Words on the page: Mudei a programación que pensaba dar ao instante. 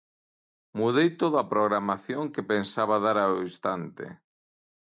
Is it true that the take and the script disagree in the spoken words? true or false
true